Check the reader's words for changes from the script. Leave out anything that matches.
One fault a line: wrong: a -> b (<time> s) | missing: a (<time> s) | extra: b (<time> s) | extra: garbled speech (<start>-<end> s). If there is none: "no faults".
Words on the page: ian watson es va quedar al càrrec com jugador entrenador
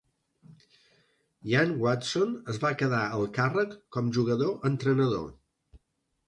no faults